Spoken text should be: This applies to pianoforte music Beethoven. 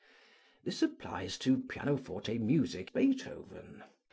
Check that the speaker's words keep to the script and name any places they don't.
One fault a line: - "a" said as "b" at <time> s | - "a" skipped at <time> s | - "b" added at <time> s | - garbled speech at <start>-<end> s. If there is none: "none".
none